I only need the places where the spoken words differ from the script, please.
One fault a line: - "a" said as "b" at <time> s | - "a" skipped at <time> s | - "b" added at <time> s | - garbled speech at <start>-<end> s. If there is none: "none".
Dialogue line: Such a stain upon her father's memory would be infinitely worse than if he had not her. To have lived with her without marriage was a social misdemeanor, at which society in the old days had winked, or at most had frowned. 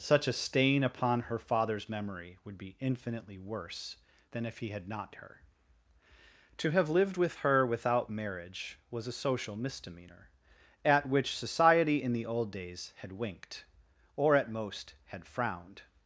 none